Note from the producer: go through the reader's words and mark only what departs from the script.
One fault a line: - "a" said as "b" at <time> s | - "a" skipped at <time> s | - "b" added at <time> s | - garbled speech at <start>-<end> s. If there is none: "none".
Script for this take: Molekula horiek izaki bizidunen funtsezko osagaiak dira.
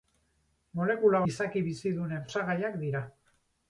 - "horiek" skipped at 1.2 s
- "funtsezko" skipped at 2.3 s